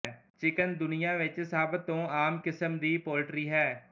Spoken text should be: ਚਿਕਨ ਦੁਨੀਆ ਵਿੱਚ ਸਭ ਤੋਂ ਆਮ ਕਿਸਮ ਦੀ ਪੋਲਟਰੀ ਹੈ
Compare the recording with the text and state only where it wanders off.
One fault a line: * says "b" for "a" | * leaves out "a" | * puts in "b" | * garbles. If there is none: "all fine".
all fine